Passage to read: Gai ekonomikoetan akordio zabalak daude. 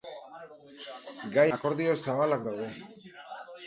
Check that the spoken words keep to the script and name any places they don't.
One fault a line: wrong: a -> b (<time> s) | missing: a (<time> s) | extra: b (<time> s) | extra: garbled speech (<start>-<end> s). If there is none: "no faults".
missing: ekonomikoetan (1.4 s)